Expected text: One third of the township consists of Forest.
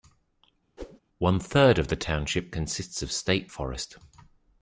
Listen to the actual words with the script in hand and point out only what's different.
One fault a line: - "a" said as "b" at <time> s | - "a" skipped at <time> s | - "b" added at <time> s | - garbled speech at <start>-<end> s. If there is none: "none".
- "State" added at 3.1 s